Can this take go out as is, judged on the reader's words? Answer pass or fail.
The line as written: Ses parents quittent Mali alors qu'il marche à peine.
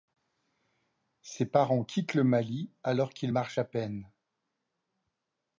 fail